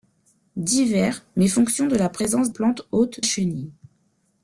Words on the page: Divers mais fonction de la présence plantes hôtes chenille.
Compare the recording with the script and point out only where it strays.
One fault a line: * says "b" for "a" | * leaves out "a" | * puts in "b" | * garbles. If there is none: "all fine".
all fine